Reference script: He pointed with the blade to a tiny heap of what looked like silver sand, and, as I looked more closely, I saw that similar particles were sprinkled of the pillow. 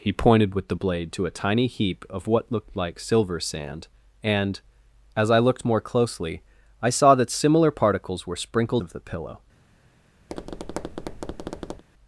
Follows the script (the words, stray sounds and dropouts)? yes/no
no